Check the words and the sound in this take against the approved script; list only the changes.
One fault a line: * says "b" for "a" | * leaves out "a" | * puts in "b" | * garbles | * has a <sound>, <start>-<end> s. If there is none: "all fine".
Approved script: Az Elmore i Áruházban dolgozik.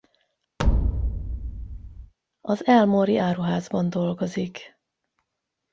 * has a thud, 0.6-2.1 s